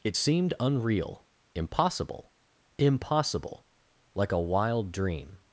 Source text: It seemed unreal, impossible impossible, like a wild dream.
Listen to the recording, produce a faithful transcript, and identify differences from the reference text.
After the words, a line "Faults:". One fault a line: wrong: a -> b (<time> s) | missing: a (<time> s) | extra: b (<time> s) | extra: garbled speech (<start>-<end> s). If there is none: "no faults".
It seemed unreal, impossible impossible, like a wild dream.
Faults:
no faults